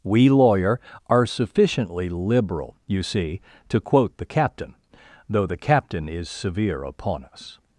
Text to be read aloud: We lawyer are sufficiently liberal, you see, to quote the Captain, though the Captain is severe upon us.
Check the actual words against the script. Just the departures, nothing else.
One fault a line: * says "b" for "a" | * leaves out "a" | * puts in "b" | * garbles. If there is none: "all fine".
all fine